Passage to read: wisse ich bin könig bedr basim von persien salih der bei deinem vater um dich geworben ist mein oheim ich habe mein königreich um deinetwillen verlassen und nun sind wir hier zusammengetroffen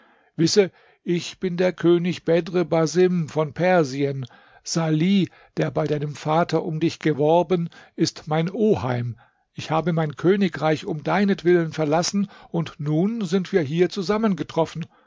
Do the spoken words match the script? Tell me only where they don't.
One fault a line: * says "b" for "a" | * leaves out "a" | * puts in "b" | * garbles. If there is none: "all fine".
* puts in "der"